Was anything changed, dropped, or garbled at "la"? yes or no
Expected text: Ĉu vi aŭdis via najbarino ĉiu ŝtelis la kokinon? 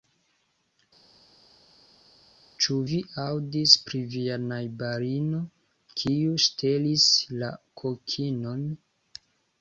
no